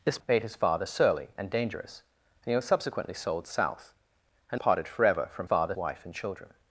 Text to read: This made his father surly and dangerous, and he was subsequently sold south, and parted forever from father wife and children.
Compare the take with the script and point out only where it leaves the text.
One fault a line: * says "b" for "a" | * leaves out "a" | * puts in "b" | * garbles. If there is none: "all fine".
all fine